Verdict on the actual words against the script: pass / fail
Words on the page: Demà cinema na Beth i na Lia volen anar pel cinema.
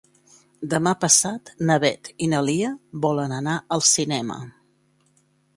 fail